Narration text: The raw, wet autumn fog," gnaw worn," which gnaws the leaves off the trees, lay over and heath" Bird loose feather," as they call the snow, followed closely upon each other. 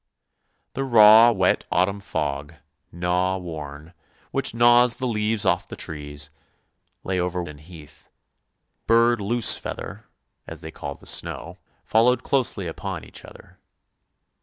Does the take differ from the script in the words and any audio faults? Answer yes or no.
no